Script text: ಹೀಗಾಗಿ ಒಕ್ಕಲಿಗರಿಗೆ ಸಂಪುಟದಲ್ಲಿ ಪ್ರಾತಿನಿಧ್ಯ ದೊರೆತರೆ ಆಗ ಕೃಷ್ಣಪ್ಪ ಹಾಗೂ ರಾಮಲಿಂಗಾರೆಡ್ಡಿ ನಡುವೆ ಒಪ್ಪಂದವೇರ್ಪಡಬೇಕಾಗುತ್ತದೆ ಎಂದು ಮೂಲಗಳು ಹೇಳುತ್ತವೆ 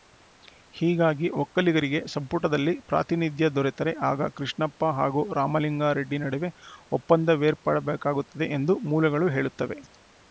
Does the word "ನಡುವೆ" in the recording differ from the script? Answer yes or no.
no